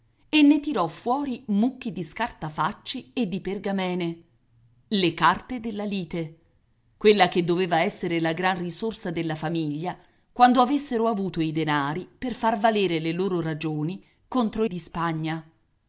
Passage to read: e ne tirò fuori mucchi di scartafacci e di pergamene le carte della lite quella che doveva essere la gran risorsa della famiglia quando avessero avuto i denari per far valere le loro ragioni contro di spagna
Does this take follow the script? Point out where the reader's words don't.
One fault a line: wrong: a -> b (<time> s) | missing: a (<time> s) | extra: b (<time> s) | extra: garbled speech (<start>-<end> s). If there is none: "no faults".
no faults